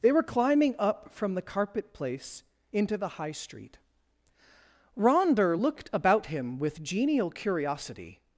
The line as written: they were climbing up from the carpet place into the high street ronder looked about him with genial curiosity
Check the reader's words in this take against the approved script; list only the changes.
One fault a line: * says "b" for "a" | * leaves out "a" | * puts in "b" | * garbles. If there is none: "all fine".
all fine